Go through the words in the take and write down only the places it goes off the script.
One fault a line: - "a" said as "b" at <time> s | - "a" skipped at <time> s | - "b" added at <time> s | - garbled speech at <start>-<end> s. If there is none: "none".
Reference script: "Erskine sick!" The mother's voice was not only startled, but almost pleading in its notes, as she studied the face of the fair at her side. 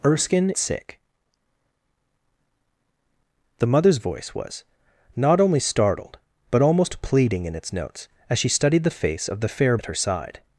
none